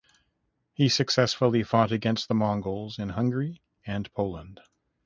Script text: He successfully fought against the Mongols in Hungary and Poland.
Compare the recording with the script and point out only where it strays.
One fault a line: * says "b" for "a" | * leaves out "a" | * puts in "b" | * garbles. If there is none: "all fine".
all fine